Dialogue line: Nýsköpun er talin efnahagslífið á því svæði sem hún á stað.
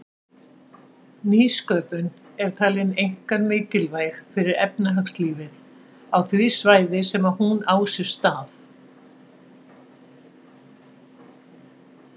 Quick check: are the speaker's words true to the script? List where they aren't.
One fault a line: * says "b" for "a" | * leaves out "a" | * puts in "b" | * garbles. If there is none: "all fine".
* puts in "einkar mikilvæg fyrir"
* puts in "sér"